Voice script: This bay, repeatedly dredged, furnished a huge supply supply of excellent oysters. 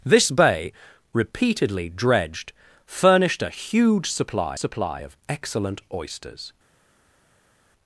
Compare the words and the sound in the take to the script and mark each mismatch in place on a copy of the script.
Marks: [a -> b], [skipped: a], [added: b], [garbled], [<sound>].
This bay, repeatedly dredged, furnished a huge supply supply of excellent oysters.